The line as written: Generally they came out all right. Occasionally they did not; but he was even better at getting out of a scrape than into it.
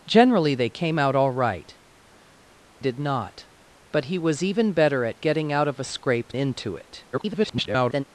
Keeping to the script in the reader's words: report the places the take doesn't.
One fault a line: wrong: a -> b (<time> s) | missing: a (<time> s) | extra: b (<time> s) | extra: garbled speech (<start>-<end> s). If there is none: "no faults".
missing: Occasionally they (1.8 s)
missing: than (6.3 s)
extra: garbled speech (7.1-8.0 s)